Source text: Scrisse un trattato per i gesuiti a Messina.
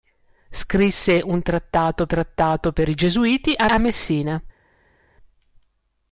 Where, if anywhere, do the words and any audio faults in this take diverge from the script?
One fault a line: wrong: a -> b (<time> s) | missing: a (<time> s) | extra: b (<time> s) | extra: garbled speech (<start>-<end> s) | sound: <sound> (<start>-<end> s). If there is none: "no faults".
extra: trattato (2.1 s)
extra: a (3.7 s)